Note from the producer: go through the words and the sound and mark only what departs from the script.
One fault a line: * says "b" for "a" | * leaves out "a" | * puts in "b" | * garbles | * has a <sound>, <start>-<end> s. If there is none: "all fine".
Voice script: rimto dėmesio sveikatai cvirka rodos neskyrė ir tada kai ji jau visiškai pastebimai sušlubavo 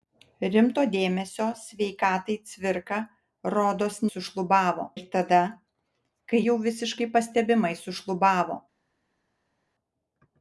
* says "sušlubavo" for "neskyrė"
* leaves out "ji"